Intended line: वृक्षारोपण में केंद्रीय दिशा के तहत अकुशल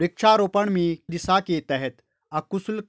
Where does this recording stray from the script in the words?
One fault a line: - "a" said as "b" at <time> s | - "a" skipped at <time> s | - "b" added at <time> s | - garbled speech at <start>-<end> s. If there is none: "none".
- "केंद्रीय" skipped at 1.0 s